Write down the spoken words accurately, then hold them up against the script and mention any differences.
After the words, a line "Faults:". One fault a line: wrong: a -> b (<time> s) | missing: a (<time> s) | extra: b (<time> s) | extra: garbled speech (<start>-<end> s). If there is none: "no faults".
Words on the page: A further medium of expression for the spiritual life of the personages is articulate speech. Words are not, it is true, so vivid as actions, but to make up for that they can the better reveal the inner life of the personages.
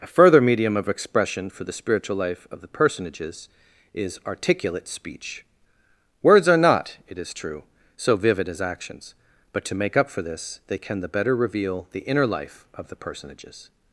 A further medium of expression for the spiritual life of the personages is articulate speech. Words are not, it is true, so vivid as actions, but to make up for this they can the better reveal the inner life of the personages.
Faults:
wrong: that -> this (10.2 s)